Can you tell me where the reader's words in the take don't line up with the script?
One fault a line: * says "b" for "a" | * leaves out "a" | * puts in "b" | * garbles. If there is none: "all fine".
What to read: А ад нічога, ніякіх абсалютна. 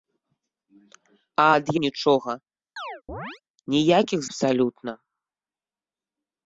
all fine